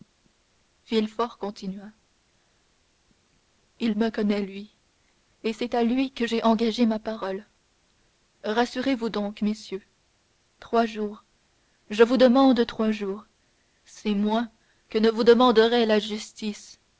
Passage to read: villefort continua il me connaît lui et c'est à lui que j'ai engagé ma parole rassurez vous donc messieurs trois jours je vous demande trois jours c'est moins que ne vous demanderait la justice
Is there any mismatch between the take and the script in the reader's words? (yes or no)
no